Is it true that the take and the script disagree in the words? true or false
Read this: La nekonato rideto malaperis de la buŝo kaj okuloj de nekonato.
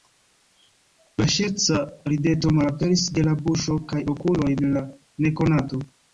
true